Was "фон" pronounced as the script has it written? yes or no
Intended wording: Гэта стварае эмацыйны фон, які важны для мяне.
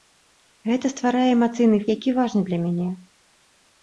no